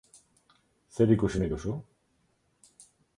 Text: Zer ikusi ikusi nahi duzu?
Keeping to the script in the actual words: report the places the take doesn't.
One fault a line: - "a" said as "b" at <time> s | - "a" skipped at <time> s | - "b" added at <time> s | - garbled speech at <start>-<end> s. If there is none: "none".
- "ikusi" skipped at 1.4 s